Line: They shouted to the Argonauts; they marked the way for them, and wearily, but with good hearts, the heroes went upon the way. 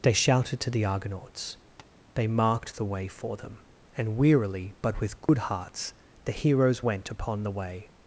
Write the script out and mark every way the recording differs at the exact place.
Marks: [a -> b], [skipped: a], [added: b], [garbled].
They shouted to the Argonauts; they marked the way for them, and wearily, but with good hearts, the heroes went upon the way.